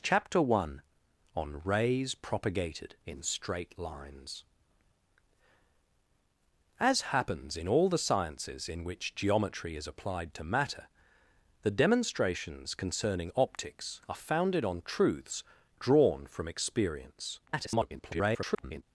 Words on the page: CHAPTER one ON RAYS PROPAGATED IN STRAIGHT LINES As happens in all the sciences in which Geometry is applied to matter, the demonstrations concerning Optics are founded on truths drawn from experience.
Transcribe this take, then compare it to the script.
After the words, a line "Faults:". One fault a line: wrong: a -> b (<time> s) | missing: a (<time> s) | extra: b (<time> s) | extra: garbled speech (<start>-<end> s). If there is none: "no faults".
CHAPTER one ON RAYS PROPAGATED IN STRAIGHT LINES As happens in all the sciences in which Geometry is applied to matter, the demonstrations concerning Optics are founded on truths drawn from experience. [garbled]
Faults:
extra: garbled speech (17.5-18.8 s)